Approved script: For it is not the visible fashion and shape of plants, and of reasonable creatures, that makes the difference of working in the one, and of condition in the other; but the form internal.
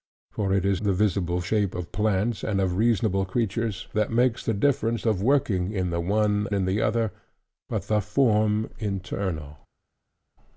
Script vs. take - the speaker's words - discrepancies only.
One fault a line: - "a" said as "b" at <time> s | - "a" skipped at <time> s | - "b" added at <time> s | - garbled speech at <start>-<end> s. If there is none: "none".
- "not" skipped at 0.8 s
- "fashion and" skipped at 1.4 s
- "and of condition" skipped at 6.5 s